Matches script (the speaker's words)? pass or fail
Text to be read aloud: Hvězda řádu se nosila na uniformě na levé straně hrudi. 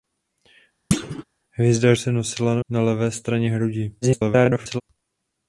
fail